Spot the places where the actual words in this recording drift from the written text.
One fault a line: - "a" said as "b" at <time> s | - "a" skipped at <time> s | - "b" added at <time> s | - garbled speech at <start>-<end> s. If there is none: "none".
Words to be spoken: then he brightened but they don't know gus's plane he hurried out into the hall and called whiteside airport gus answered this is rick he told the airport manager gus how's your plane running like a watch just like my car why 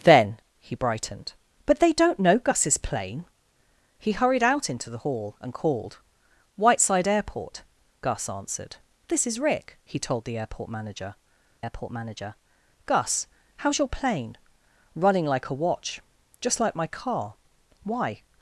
- "airport manager" added at 11.6 s